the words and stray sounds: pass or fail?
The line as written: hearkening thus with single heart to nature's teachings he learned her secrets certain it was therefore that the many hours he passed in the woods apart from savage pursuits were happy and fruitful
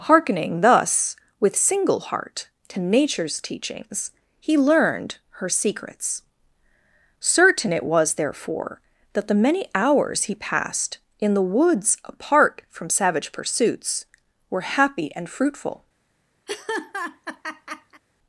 fail